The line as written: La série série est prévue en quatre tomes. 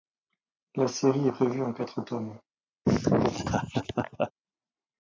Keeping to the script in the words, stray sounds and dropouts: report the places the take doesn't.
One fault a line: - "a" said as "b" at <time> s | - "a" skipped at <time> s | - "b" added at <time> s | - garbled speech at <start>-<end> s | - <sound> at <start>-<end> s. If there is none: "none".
- "série" skipped at 1.3 s
- laugh at 2.8-4.3 s